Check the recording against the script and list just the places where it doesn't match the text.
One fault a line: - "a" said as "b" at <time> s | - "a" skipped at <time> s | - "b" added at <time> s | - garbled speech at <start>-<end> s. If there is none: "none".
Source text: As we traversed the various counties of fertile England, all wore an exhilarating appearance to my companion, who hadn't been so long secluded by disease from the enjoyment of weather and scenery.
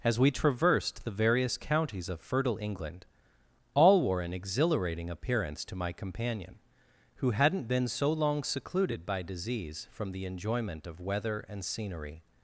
none